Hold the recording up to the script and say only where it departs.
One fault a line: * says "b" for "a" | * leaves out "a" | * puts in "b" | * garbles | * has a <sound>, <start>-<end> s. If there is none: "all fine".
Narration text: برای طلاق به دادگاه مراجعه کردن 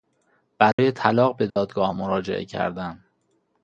* has a dropout, 0.7-0.8 s
* has a dropout, 1.5-1.6 s